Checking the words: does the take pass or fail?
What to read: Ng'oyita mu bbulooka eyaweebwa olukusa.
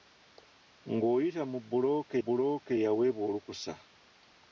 fail